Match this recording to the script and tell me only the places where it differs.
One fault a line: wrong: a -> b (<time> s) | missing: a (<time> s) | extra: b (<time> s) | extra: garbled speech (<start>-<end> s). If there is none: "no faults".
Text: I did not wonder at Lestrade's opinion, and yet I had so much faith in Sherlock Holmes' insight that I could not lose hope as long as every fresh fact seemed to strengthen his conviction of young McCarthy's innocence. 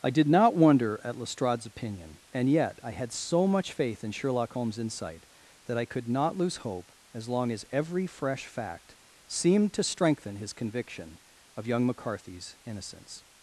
no faults